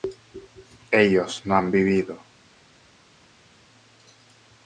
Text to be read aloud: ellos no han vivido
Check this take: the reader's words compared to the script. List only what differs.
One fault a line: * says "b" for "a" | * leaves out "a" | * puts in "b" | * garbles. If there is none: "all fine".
all fine